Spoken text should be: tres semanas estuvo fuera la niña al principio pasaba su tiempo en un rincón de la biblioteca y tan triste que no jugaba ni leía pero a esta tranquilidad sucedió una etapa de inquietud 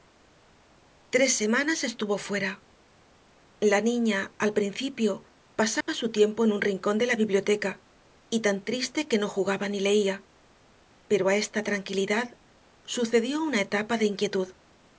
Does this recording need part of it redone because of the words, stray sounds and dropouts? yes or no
yes